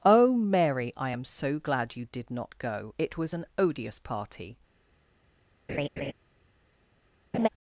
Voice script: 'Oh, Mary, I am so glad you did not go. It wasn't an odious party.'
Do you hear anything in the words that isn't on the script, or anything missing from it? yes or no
yes